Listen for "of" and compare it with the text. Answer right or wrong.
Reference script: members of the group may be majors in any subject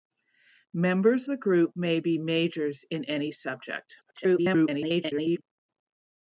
wrong